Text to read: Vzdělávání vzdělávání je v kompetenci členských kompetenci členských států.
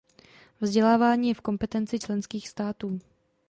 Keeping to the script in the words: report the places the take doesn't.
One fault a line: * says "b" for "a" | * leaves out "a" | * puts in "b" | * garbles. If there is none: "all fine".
* leaves out "vzdělávání"
* leaves out "kompetenci členských"